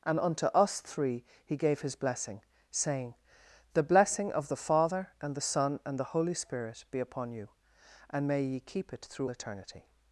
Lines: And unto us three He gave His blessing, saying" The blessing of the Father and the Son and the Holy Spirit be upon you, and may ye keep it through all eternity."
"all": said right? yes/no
no